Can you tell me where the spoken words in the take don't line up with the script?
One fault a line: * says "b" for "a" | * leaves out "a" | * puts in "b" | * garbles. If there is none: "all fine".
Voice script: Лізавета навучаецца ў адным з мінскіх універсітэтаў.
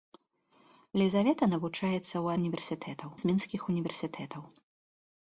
* says "універсітэтаў" for "адным"